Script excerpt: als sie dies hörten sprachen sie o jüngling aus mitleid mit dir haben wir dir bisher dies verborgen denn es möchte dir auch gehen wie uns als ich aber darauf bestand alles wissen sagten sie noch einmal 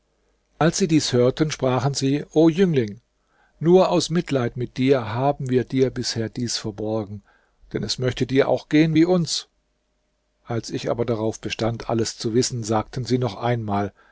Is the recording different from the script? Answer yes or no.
yes